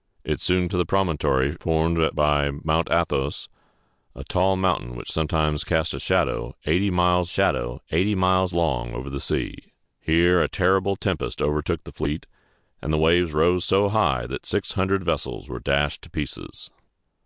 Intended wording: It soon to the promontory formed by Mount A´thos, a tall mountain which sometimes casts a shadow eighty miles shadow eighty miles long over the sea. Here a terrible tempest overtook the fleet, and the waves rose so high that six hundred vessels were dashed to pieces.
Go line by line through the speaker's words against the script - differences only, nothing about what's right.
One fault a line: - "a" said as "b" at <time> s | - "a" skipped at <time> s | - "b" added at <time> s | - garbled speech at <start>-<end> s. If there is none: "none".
none